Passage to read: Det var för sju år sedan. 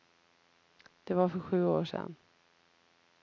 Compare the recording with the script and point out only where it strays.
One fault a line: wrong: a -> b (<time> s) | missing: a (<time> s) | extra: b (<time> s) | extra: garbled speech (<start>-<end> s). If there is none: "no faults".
no faults